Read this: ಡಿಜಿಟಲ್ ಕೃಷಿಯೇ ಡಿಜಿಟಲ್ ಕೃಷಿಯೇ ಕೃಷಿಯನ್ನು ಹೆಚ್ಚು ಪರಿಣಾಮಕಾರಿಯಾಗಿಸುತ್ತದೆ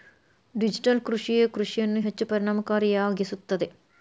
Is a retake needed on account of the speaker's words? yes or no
yes